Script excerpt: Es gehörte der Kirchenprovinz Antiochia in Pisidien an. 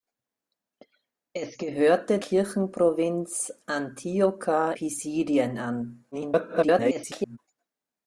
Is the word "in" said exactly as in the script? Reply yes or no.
no